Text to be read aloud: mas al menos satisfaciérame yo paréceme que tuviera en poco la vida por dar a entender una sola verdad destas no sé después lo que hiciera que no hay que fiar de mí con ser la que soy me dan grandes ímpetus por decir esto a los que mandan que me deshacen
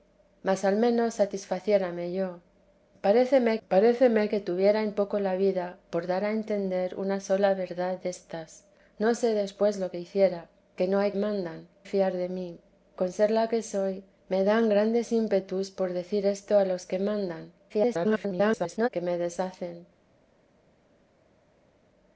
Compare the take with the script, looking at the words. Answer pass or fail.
fail